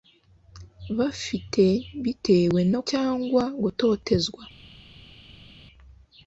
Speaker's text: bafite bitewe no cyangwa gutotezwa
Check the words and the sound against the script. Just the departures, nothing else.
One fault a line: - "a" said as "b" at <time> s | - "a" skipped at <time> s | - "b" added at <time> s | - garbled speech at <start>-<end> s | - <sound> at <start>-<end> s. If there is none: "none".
none